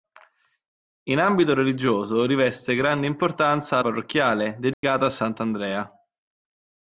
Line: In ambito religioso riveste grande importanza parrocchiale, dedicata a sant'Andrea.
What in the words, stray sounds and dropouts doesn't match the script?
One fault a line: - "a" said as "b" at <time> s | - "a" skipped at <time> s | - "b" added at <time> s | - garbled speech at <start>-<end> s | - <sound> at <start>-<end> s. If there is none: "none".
- dropout at 4.7-4.8 s